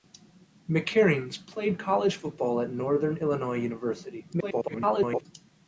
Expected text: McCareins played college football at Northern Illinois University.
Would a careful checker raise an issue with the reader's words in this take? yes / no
yes